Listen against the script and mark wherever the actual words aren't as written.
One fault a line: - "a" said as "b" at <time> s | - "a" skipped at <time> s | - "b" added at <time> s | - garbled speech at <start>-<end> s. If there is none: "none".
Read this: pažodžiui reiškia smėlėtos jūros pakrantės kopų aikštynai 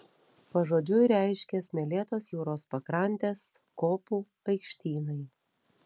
none